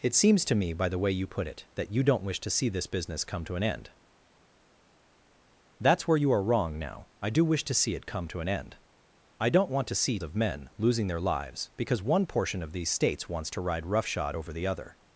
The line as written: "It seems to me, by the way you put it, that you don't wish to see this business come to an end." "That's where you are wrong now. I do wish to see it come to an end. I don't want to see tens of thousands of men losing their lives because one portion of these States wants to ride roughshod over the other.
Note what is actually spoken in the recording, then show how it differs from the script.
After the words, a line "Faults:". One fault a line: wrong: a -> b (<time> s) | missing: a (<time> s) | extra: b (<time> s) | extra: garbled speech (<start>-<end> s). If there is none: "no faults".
"It seems to me, by the way you put it, that you don't wish to see this business come to an end." "That's where you are wrong now. I do wish to see it come to an end. I don't want to see of men losing their lives because one portion of these States wants to ride roughshod over the other.
Faults:
missing: tens of thousands (10.2 s)